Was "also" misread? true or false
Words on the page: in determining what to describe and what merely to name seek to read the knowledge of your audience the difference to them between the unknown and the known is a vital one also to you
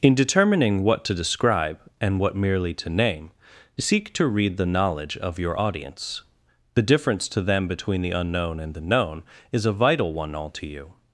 true